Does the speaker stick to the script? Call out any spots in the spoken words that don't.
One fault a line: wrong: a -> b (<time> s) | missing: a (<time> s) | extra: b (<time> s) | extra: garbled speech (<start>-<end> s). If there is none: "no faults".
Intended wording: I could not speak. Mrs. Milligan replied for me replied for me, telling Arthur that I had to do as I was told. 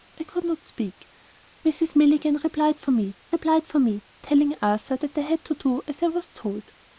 no faults